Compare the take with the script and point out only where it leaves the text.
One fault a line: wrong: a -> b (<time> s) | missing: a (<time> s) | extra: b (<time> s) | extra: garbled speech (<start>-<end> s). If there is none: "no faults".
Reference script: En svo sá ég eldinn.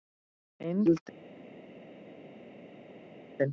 missing: svo sá ég (0.8 s)